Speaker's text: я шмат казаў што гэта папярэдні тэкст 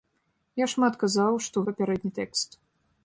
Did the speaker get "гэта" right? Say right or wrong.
wrong